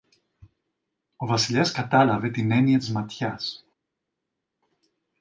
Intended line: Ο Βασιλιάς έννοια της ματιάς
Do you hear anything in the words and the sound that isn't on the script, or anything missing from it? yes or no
yes